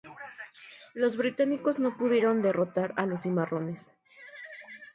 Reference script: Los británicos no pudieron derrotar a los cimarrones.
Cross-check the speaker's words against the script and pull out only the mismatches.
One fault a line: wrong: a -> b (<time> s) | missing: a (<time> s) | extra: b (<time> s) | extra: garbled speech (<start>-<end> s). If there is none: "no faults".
no faults